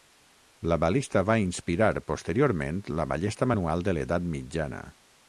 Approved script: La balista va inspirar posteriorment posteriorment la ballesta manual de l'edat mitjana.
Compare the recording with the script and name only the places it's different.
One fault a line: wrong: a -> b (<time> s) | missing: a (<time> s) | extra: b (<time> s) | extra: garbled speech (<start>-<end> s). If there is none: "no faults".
missing: posteriorment (2.8 s)